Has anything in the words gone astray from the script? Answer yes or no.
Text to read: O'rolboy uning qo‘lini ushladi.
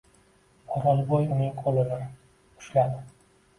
no